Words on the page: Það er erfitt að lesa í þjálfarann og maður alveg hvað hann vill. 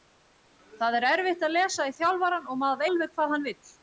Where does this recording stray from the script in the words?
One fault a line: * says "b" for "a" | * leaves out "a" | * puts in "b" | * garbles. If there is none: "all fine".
all fine